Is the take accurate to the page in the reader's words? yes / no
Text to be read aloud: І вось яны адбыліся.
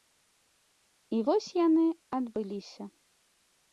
yes